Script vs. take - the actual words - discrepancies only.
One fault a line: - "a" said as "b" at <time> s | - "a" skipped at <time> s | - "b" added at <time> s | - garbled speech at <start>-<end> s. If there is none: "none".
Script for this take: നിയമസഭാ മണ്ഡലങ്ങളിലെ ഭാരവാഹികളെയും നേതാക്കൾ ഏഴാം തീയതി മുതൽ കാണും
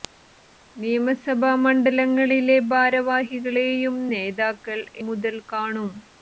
- "ഏഴാം തീയതി" skipped at 4.8 s